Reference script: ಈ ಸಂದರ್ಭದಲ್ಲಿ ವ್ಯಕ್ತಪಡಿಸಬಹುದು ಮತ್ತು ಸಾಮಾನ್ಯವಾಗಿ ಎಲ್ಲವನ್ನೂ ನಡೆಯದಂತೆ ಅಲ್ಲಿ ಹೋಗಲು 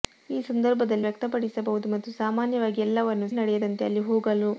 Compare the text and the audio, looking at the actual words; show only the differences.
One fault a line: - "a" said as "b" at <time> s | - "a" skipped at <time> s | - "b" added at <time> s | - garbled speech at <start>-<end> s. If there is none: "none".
none